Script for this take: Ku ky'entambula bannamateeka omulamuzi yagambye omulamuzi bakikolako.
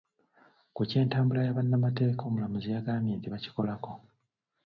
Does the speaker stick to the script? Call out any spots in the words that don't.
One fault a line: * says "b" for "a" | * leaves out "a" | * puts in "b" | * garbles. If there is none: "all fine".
* puts in "ya"
* says "nti" for "omulamuzi"